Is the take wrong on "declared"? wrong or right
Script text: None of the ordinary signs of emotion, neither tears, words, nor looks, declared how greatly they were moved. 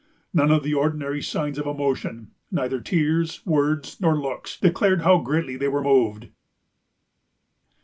right